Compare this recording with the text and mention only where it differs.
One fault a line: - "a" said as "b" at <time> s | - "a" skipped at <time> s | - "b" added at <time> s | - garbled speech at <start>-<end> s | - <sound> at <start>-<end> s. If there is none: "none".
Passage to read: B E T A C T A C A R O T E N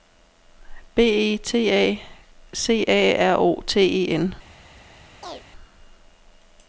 - "T A C" skipped at 2.8 s
- chirp at 5.2-5.4 s